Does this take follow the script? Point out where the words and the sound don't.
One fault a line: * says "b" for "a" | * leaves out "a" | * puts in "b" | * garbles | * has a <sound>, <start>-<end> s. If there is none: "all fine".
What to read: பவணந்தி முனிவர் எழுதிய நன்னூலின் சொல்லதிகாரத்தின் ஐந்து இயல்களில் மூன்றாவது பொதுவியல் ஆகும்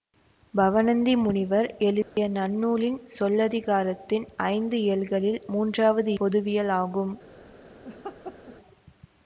* has a dropout, 2.0-2.2 s
* has a laugh, 7.8-8.6 s